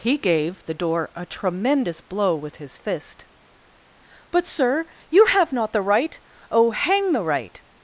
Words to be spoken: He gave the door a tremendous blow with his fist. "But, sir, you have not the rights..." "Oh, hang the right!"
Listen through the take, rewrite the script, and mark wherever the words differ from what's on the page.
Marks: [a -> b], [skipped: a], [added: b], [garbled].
He gave the door a tremendous blow with his fist. "But, sir, you have not the [rights..." -> right] "Oh, hang the right!"